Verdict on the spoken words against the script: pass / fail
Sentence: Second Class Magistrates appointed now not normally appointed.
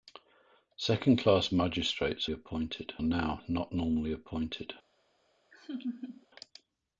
pass